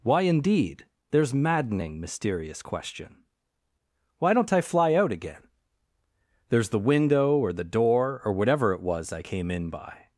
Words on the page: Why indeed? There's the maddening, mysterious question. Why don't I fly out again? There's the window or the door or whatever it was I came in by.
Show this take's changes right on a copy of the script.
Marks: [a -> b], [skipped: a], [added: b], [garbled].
Why indeed? There's [skipped: the] maddening, mysterious question. Why don't I fly out again? There's the window or the door or whatever it was I came in by.